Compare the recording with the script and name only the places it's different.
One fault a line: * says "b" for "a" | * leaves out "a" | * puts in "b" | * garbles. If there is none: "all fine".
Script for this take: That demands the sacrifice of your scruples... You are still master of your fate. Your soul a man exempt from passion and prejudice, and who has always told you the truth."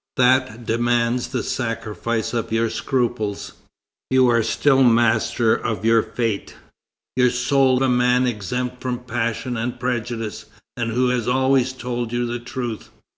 all fine